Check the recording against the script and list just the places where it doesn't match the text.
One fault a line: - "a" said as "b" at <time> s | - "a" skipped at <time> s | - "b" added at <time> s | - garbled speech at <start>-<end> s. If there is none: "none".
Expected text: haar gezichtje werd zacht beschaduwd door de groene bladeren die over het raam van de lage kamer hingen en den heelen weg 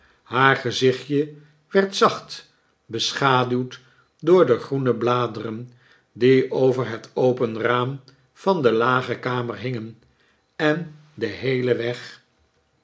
- "open" added at 7.1 s